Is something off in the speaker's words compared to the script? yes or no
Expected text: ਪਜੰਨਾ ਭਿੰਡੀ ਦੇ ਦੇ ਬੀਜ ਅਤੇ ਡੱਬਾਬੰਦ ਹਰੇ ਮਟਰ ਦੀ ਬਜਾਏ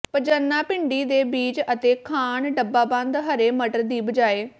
yes